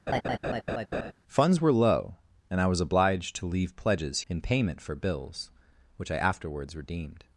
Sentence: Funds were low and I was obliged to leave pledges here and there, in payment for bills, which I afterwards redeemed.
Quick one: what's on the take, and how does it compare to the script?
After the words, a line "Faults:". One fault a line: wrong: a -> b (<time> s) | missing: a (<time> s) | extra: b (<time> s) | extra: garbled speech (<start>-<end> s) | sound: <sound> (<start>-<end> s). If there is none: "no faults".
Funds were low and I was obliged to leave pledges in payment for bills, which I afterwards redeemed.
Faults:
sound: laugh (0.1-1.1 s)
missing: here and there (4.2 s)